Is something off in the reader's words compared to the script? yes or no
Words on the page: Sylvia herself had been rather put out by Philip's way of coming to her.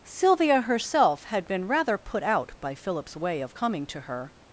no